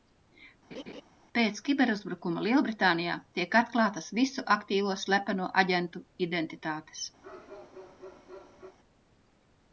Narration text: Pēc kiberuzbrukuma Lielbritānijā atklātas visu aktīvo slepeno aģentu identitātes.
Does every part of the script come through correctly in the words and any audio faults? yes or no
no